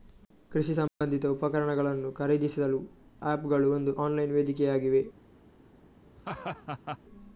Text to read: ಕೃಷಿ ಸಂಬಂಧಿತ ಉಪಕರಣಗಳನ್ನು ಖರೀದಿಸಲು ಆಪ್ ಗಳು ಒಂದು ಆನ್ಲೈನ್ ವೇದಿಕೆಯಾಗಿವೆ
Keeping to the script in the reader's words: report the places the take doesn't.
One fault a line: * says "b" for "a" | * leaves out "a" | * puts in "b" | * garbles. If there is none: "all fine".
all fine